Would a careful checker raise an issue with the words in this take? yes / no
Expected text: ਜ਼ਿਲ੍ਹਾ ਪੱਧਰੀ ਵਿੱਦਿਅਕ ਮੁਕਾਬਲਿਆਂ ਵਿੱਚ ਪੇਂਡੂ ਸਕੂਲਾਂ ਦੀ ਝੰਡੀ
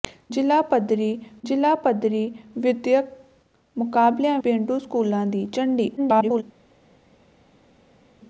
yes